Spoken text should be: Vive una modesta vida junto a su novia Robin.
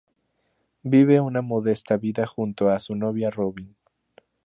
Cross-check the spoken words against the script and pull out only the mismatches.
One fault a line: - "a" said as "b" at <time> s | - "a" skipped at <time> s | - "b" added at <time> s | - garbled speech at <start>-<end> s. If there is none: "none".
none